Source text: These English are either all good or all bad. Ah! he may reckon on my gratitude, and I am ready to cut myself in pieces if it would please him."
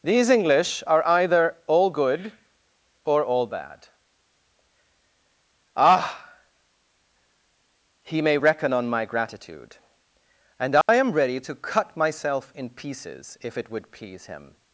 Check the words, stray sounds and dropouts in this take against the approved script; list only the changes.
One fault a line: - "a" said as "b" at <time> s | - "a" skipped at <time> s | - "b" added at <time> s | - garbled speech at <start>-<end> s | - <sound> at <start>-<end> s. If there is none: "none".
- dropout at 10.8-10.9 s